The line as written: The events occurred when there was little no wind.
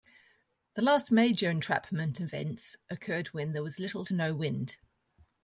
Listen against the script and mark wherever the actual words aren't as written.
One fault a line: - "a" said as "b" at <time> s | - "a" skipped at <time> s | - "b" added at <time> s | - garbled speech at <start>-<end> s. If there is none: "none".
- "last major entrapment" added at 0.8 s
- "to" added at 4.0 s